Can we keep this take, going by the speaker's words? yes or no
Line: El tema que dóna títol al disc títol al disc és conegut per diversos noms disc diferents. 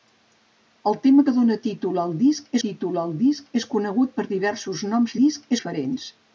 yes